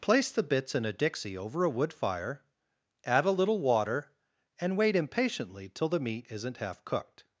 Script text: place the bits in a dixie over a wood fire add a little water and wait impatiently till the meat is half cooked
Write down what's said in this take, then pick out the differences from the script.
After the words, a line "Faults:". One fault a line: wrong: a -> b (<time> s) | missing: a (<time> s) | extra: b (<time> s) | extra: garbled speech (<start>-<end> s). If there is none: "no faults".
place the bits in a dixie over a wood fire add a little water and wait impatiently till the meat isn't half cooked
Faults:
wrong: is -> isn't (6.3 s)